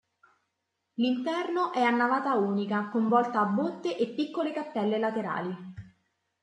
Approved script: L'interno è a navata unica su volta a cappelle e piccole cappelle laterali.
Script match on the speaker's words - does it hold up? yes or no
no